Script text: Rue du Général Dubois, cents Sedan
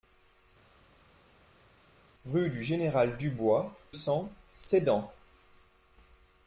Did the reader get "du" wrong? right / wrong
right